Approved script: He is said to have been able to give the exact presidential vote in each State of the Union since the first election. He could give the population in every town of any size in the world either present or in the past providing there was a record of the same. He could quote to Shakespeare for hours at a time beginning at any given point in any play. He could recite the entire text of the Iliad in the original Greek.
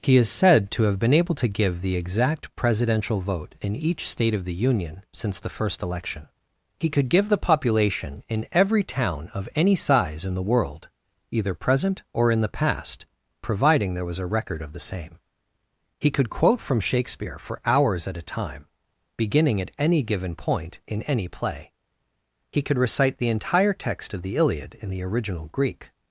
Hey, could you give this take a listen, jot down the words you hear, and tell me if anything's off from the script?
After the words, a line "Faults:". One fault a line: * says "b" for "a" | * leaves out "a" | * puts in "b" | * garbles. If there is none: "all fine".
He is said to have been able to give the exact presidential vote in each State of the Union since the first election. He could give the population in every town of any size in the world either present or in the past providing there was a record of the same. He could quote from Shakespeare for hours at a time beginning at any given point in any play. He could recite the entire text of the Iliad in the original Greek.
Faults:
* says "from" for "to"